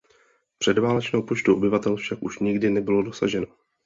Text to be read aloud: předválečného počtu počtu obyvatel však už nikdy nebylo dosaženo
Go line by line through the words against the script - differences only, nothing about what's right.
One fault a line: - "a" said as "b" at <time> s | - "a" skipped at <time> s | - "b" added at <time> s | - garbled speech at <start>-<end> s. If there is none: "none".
- "počtu" skipped at 1.6 s